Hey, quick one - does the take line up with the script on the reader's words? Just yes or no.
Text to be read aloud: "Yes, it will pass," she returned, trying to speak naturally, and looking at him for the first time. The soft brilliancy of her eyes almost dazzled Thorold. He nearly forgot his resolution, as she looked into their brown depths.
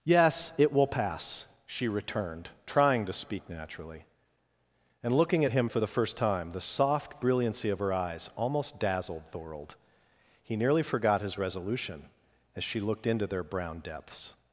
yes